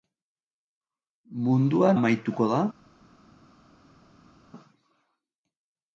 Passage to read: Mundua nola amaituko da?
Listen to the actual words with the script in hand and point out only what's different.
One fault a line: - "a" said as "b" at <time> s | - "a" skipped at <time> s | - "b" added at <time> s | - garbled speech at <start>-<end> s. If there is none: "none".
- "nola" skipped at 1.9 s